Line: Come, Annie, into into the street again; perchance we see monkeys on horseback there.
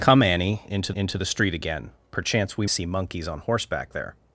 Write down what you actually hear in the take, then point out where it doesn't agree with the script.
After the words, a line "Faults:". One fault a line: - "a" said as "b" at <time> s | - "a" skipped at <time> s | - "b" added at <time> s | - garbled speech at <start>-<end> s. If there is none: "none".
Come, Annie, into into the street again; perchance we see monkeys on horseback there.
Faults:
none